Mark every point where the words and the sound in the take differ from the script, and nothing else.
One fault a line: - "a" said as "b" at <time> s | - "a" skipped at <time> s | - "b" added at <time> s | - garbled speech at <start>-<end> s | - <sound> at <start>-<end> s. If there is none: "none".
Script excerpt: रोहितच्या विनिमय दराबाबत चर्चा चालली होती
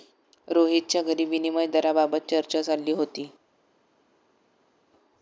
- "घरी" added at 1.0 s